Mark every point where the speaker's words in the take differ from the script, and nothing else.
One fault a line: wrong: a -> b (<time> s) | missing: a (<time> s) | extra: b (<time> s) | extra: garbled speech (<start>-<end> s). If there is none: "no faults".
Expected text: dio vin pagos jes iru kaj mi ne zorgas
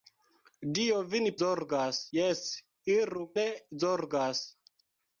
wrong: pagos -> zorgas (1.4 s)
missing: kaj mi (3.2 s)